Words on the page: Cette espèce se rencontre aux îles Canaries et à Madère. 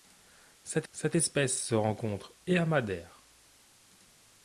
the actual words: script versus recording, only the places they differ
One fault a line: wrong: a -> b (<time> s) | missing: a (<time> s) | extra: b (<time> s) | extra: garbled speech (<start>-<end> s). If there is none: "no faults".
extra: cette (0.9 s)
missing: aux îles Canaries (2.3 s)